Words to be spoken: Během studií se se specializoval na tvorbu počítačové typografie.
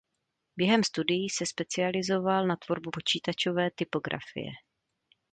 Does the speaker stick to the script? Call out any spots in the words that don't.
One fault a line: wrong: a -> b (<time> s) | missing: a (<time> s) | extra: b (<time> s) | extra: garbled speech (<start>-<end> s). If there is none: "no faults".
missing: se (1.4 s)